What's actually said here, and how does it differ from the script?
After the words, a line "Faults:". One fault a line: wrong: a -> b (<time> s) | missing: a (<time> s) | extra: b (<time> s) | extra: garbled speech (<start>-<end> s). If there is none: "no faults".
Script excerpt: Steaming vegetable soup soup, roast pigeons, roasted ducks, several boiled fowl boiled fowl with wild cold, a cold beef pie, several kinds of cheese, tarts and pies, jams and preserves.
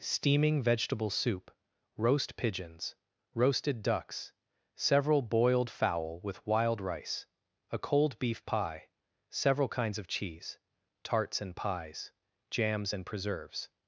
Steaming vegetable soup, roast pigeons, roasted ducks, several boiled fowl with wild rice, a cold beef pie, several kinds of cheese, tarts and pies, jams and preserves.
Faults:
missing: soup (1.5 s)
missing: boiled fowl (6.2 s)
wrong: cold -> rice (6.8 s)